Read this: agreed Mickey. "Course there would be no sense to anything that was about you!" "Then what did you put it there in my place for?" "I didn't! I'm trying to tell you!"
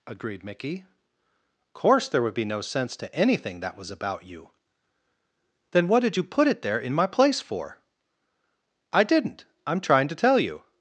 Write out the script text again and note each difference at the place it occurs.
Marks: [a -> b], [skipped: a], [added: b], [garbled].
agreed Mickey. "Course there would be no sense to anything that was about you!" "Then what did you put it there in my place for?" "I didn't! I'm trying to tell you!"